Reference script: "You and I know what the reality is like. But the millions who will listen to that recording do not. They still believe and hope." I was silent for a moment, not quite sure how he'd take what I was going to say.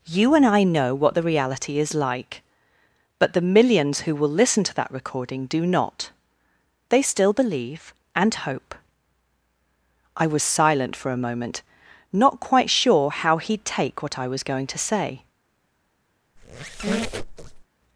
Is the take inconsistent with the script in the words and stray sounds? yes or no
yes